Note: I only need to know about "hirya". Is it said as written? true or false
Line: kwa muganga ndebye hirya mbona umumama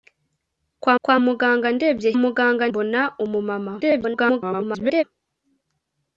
false